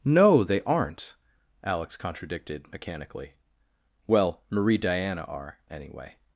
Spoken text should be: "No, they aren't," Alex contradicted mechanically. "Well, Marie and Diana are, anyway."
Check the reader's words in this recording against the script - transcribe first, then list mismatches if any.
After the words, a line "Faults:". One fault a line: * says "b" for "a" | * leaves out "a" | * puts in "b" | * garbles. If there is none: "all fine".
"No, they aren't," Alex contradicted mechanically. "Well, Marie Diana are, anyway."
Faults:
* leaves out "and"